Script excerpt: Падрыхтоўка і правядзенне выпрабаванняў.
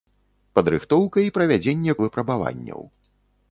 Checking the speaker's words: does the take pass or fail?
pass